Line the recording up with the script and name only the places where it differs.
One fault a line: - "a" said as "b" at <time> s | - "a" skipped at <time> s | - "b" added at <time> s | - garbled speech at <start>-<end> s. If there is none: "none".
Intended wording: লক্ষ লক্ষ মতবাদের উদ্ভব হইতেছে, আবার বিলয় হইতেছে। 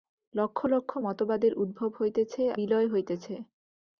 - "আবার" skipped at 2.4 s